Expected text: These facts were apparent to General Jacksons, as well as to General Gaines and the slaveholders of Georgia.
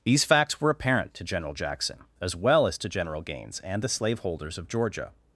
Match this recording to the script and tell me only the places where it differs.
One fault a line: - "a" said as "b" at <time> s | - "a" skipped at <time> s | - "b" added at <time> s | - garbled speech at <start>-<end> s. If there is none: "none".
- "Jacksons" said as "Jackson" at 1.5 s